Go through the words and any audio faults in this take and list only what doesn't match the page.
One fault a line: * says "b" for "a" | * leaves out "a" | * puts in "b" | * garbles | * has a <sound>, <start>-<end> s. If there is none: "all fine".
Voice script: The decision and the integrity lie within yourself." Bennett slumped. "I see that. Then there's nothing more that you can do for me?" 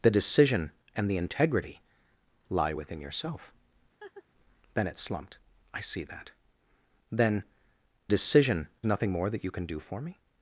* has a laugh, 4.0-4.3 s
* says "decision" for "there's"